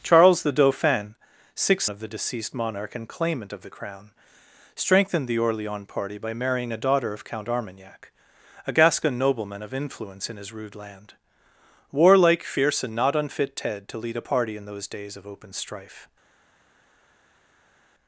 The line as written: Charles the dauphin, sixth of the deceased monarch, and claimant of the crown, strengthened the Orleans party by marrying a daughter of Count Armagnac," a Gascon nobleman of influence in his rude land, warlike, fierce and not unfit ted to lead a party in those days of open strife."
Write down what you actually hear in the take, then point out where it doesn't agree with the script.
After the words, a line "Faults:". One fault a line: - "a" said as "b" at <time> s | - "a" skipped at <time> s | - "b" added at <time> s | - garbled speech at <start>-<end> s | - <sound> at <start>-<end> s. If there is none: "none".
Charles the dauphin, sixth of the deceased monarch, and claimant of the crown, strengthened the Orleans party by marrying a daughter of Count Armagnac," a Gascon nobleman of influence in his rude land, warlike, fierce and not unfit ted to lead a party in those days of open strife."
Faults:
none